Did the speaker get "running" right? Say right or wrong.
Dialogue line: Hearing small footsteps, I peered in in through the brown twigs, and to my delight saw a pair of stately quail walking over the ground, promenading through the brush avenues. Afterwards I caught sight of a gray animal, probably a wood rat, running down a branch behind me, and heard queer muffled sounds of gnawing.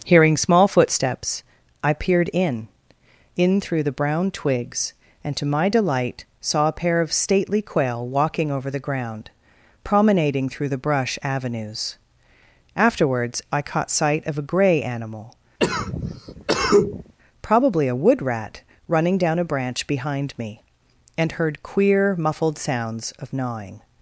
right